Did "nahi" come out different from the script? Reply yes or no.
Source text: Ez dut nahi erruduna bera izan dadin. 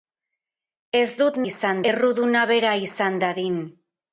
yes